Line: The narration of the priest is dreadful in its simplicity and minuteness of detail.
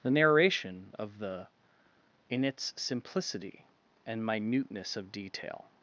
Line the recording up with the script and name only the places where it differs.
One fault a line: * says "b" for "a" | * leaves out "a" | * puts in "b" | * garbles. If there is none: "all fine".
* leaves out "priest is dreadful"